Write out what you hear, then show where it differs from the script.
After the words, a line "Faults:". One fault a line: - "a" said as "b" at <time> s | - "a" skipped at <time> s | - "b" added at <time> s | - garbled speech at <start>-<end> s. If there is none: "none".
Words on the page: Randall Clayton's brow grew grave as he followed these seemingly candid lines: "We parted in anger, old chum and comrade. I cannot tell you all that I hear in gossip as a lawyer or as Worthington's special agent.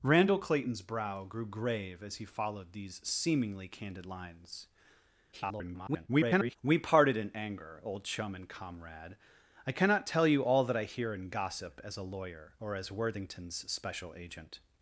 Randall Clayton's brow grew grave as he followed these seemingly candid lines: [garbled] "We parted in anger, old chum and comrade. I cannot tell you all that I hear in gossip as a lawyer or as Worthington's special agent.
Faults:
- garbled speech at 5.3-6.6 s